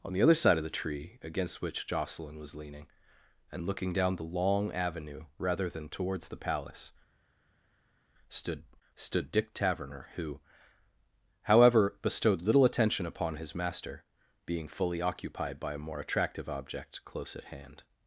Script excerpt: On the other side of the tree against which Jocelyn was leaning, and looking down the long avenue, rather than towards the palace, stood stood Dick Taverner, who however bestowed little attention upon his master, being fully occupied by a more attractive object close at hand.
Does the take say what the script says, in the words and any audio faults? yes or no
yes